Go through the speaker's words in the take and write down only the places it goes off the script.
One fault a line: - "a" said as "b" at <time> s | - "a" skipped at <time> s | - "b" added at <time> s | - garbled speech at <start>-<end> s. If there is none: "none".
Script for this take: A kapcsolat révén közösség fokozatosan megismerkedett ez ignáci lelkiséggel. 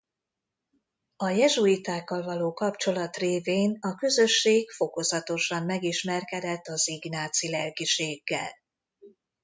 - "jezsuitákkal való" added at 1.3 s
- "a" added at 3.8 s
- "ez" said as "az" at 6.7 s